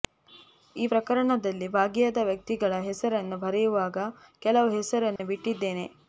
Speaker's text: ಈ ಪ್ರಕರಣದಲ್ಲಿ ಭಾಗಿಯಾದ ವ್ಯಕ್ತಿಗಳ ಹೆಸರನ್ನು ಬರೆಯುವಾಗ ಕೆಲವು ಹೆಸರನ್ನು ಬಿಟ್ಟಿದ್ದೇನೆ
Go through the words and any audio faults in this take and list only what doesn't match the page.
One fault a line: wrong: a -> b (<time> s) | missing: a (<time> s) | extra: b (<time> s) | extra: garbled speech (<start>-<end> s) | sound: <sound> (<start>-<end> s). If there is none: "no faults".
sound: dropout (5.2-5.2 s)